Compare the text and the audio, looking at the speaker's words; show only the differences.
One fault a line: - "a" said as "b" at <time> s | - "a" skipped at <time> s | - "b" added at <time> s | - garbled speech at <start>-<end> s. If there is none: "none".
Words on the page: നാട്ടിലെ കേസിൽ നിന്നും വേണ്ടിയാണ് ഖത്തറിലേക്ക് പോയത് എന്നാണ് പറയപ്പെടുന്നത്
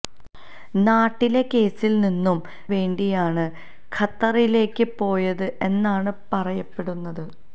none